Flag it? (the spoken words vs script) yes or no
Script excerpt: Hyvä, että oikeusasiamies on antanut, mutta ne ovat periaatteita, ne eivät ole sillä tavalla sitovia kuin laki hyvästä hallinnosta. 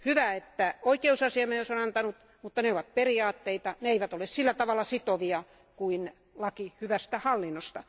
no